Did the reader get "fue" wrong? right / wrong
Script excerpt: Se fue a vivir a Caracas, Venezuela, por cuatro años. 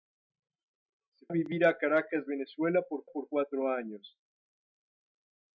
wrong